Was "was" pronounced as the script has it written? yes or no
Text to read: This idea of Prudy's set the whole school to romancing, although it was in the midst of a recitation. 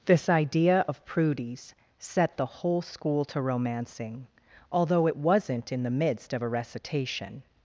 no